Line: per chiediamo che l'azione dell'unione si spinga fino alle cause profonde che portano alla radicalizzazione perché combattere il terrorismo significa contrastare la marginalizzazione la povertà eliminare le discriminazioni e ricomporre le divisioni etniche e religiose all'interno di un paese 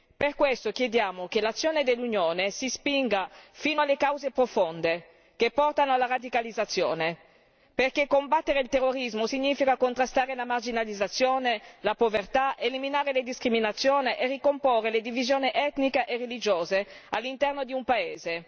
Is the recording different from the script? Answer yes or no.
yes